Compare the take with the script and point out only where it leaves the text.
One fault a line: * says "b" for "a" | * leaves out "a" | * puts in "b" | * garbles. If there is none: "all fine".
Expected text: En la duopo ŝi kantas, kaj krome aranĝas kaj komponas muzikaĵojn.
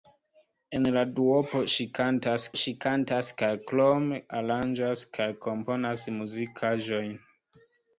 * puts in "ŝi kantas"